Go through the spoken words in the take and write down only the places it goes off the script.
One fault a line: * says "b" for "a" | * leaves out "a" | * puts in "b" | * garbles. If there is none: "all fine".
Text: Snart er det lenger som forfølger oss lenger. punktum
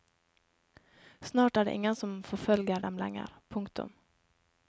* says "ingen" for "lenger"
* says "dem" for "oss"